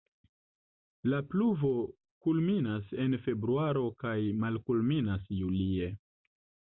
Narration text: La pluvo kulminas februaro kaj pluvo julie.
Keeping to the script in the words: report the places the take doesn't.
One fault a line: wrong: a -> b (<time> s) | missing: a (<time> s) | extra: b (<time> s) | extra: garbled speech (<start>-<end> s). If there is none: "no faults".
extra: en (3.0 s)
wrong: pluvo -> malkulminas (4.4 s)